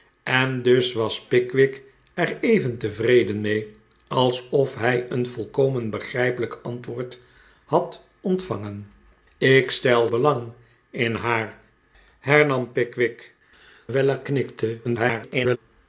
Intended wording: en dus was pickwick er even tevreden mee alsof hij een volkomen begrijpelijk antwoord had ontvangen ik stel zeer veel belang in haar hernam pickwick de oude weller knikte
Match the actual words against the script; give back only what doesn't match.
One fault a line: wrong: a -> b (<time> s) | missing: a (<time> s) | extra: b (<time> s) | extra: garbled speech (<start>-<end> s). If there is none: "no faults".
missing: zeer veel (10.1 s)
missing: de oude (13.3 s)
extra: garbled speech (14.8-15.6 s)